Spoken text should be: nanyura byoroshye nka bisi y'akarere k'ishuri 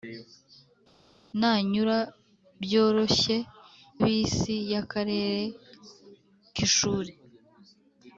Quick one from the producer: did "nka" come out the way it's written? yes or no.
no